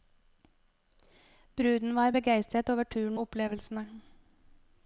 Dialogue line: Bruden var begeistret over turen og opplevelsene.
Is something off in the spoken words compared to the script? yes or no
yes